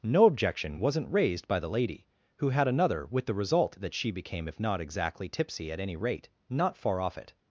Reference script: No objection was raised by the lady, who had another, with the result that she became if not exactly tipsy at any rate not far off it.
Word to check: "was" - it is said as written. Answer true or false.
false